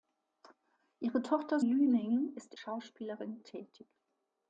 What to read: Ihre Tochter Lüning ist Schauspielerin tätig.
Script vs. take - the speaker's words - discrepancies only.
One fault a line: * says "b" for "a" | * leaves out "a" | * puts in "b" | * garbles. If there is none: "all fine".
all fine